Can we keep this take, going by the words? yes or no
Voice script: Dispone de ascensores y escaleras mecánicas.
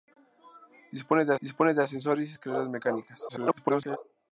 no